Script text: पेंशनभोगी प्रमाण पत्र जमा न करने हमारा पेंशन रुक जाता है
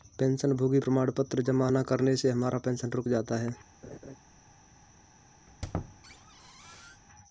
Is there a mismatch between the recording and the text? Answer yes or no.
yes